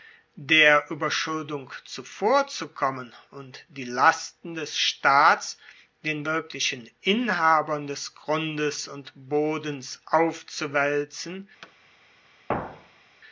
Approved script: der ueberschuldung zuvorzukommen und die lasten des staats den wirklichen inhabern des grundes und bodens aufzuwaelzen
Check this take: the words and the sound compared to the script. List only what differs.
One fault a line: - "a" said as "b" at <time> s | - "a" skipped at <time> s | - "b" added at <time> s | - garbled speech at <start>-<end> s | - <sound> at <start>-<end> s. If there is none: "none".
- thud at 11.6-11.7 s
- thud at 12.5-13.2 s